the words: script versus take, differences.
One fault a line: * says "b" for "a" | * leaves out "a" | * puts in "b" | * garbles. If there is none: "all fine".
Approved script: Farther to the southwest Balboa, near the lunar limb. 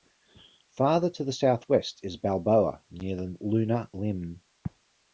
* puts in "is"